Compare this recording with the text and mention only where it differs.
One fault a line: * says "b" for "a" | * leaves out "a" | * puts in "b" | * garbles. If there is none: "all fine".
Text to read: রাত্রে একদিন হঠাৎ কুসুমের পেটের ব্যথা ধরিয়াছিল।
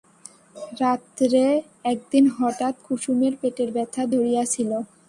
all fine